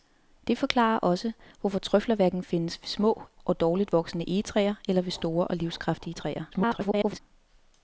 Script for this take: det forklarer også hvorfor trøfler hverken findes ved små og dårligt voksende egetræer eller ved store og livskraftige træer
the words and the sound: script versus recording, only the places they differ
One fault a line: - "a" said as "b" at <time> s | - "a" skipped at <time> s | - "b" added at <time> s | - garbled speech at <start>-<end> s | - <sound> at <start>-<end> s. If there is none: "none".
- garbled speech at 6.5-7.2 s